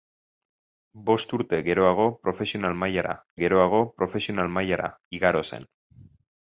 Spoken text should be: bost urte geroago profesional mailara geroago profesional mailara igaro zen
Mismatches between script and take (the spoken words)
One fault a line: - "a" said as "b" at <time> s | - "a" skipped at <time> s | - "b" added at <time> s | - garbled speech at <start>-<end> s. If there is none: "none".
none